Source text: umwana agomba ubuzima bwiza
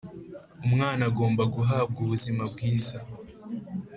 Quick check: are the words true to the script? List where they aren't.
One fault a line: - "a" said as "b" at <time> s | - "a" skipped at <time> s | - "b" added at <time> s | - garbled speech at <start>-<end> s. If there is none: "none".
- "guhabwa" added at 1.6 s